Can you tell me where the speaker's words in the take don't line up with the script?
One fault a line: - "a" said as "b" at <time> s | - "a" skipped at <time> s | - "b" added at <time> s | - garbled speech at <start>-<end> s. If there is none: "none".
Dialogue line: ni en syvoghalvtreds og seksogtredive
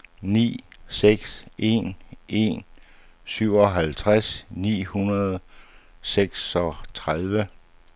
- "seks" added at 0.9 s
- "en" added at 2.3 s
- "ni hundrede" added at 4.5 s